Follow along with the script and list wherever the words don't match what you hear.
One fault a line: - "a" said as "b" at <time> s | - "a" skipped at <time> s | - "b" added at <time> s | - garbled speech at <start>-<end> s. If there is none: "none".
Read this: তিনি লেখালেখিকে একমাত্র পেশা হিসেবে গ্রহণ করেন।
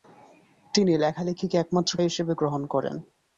- "পেশা" skipped at 1.9 s